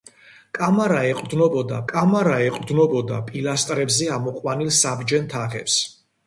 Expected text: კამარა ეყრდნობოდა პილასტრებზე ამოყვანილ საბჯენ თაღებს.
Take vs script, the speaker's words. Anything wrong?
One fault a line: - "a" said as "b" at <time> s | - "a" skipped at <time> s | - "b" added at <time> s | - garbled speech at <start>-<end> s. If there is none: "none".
- "კამარა ეყრდნობოდა" added at 1.9 s